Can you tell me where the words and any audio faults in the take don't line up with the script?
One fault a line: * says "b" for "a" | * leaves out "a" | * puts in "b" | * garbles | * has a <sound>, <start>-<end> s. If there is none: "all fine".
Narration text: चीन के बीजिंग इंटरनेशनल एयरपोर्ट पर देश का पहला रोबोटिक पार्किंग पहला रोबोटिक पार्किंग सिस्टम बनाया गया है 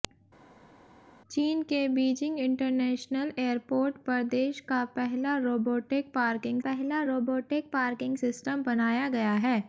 all fine